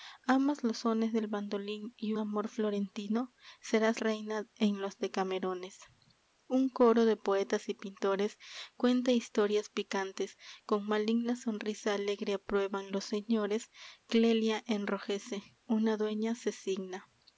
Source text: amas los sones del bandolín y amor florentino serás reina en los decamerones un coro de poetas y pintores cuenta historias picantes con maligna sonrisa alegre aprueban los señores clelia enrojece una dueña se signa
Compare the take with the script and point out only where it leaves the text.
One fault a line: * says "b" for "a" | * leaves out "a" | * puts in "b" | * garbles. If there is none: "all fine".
all fine